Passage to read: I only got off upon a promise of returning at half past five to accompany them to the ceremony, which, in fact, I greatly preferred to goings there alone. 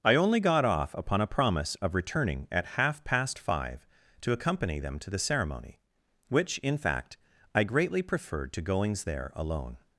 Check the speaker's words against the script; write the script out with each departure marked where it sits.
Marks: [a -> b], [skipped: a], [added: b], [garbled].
I only got off upon a promise of returning at half past five to accompany them to the ceremony, which, in fact, I greatly preferred to goings there alone.